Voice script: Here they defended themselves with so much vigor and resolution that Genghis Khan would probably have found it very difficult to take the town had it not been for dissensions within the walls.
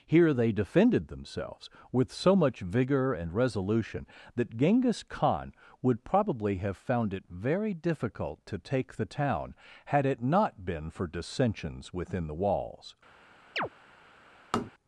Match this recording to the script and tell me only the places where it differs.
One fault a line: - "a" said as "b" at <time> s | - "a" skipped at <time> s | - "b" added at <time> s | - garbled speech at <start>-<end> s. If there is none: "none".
none